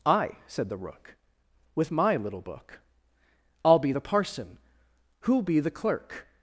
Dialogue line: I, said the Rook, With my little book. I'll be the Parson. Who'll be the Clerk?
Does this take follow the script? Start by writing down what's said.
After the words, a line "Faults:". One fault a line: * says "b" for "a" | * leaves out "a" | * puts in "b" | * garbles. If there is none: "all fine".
I, said the Rook, With my little book. I'll be the Parson. Who'll be the Clerk?
Faults:
all fine